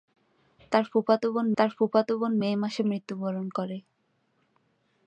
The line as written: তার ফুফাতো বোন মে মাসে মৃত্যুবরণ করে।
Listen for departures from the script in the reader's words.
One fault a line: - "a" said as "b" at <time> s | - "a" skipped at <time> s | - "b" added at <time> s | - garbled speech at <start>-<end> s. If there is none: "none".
- "তার ফুফাতো বোন" added at 1.6 s